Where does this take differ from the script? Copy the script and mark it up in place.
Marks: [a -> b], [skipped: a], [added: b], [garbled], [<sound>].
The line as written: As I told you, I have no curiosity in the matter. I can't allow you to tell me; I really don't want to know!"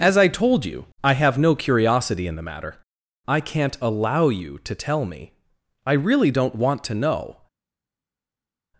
As I told you, I have no curiosity in the matter. I can't allow you to tell me; I really don't want to know!"